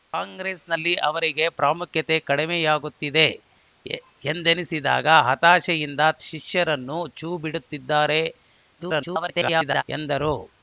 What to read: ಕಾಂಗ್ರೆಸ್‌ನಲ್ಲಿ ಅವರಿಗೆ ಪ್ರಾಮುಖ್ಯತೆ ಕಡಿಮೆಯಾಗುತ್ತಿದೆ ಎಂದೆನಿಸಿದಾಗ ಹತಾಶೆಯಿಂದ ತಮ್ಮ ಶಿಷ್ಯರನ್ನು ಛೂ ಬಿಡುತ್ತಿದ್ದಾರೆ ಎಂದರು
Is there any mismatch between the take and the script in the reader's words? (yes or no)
yes